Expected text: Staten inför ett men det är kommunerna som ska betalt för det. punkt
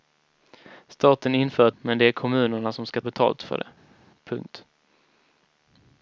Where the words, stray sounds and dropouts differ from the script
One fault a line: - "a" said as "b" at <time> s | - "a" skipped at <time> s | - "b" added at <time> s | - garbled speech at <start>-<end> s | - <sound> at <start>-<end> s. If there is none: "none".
none